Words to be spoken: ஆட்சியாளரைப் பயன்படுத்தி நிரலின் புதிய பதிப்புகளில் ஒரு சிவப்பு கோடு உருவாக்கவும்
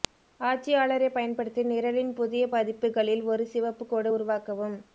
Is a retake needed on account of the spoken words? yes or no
no